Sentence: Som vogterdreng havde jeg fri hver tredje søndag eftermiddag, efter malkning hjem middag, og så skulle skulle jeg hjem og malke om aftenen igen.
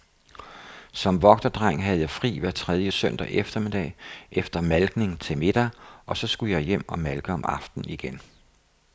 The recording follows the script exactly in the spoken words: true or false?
false